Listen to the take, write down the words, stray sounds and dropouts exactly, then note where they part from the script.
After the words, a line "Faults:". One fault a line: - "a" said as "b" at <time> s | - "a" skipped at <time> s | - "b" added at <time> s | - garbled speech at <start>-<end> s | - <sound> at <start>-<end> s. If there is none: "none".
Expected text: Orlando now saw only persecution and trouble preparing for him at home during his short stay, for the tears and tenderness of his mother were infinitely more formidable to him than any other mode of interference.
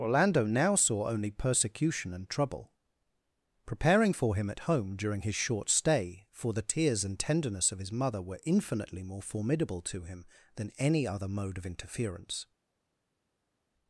Orlando now saw only persecution and trouble preparing for him at home during his short stay, for the tears and tenderness of his mother were infinitely more formidable to him than any other mode of interference.
Faults:
none